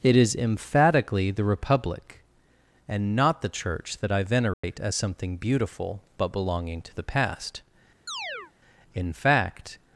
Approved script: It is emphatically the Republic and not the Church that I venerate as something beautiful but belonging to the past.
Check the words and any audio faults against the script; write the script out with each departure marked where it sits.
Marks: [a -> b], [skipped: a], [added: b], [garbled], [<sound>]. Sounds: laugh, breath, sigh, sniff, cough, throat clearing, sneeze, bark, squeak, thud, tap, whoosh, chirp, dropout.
It is emphatically the Republic and not the Church that I venerate [dropout] as something beautiful but belonging to the past. [chirp] [added: In fact]